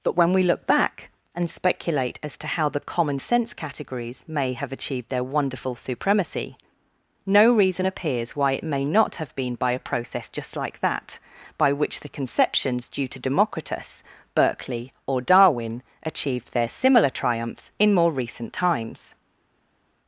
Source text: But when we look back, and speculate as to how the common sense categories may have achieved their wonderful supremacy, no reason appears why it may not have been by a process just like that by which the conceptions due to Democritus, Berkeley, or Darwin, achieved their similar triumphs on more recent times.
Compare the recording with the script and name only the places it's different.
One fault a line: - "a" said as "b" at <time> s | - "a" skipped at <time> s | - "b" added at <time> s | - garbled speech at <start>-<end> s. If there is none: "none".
- "on" said as "in" at 17.8 s